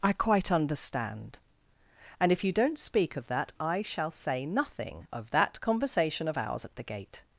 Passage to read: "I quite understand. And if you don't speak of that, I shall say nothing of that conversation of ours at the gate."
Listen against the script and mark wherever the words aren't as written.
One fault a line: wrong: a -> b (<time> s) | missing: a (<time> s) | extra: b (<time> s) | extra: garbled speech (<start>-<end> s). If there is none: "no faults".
no faults